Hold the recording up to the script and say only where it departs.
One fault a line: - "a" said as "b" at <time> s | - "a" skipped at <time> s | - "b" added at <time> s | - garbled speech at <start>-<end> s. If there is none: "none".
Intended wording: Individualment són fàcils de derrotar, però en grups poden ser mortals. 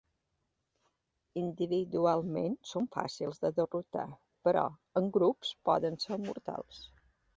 none